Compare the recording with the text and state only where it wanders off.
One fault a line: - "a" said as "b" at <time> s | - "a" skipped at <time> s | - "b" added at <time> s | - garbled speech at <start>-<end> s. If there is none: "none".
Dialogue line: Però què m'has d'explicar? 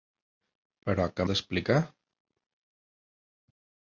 - "m'has" skipped at 1.3 s